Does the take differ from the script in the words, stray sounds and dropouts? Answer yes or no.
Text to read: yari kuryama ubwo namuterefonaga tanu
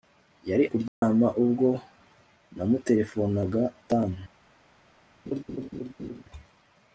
yes